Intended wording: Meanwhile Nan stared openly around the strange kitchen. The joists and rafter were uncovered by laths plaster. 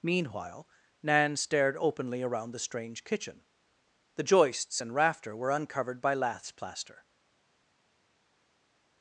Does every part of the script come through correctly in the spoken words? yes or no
yes